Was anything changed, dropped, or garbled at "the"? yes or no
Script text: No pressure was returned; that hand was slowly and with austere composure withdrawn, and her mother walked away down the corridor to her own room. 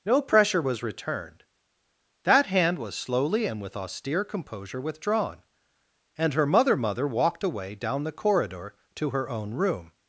no